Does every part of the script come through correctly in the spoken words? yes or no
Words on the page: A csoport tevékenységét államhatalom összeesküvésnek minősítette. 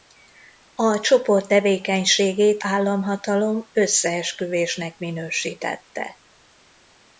yes